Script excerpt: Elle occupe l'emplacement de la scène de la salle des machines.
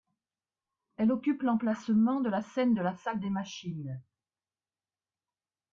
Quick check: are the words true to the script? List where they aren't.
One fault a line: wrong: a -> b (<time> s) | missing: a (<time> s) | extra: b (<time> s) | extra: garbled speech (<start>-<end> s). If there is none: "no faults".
no faults